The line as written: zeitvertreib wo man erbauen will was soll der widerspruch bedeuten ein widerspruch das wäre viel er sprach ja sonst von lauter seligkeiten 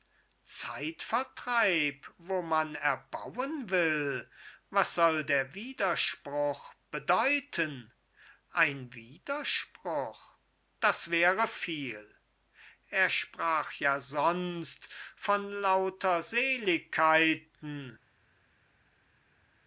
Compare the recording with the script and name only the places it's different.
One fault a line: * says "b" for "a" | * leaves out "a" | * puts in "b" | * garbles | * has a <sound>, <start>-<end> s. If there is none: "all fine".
all fine